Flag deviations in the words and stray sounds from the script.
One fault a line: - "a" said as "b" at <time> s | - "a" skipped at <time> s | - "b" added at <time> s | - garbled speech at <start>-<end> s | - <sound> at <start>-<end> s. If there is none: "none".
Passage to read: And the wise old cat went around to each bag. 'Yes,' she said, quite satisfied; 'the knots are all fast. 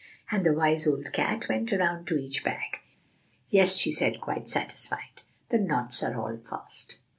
none